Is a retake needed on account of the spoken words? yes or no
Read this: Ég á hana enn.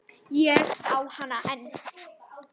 no